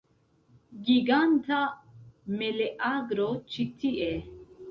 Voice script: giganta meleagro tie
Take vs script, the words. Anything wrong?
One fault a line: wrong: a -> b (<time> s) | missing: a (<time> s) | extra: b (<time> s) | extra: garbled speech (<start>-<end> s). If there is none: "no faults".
extra: ĉi (3.6 s)